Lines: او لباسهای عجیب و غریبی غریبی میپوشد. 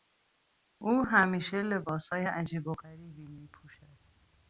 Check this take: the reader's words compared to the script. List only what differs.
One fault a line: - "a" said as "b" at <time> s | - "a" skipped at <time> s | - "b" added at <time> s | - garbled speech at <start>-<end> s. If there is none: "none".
- "همیشه" added at 1.1 s
- "غریبی" skipped at 3.3 s